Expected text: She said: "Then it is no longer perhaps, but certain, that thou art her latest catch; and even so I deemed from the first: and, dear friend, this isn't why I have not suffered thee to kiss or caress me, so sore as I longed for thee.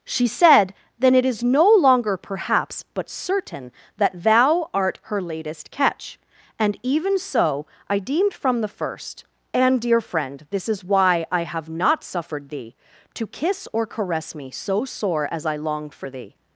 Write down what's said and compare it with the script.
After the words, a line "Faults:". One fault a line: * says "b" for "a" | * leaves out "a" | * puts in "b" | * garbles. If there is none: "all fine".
She said: "Then it is no longer perhaps, but certain, that thou art her latest catch; and even so I deemed from the first: and, dear friend, this is why I have not suffered thee to kiss or caress me, so sore as I longed for thee.
Faults:
* says "is" for "isn't"